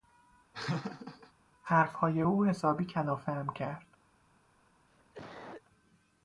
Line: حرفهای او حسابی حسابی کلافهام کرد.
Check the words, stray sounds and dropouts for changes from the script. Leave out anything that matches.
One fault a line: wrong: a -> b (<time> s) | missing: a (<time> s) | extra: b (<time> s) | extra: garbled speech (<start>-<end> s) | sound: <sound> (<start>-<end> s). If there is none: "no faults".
sound: laugh (0.5-1.3 s)
missing: حسابی (2.8 s)
sound: cough (4.9-5.6 s)